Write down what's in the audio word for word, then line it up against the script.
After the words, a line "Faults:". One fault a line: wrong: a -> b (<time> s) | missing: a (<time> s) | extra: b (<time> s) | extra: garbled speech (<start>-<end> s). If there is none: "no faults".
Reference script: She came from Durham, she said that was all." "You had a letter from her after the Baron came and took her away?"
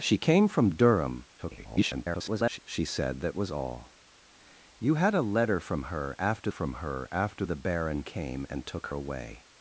She came from Durham, [garbled] she said that was all." "You had a letter from her after from her after the Baron came and took away?"
Faults:
extra: garbled speech (1.4-2.6 s)
extra: from her after (6.5 s)
missing: her (8.9 s)